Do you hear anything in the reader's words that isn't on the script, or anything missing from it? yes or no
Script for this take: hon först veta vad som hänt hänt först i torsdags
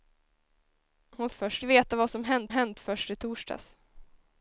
no